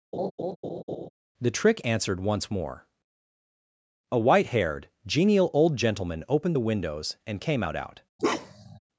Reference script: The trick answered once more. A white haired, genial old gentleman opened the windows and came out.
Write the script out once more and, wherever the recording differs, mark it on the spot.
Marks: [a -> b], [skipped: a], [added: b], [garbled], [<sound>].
[laugh] The trick answered once more. A white haired, genial old gentleman opened the windows and came out. [added: out] [bark]